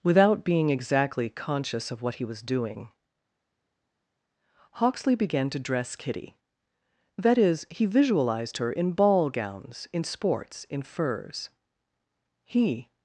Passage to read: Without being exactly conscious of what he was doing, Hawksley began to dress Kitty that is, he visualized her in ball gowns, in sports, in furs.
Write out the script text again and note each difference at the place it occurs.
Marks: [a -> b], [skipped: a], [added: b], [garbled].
Without being exactly conscious of what he was doing, Hawksley began to dress Kitty that is, he visualized her in ball gowns, in sports, in furs. [added: He]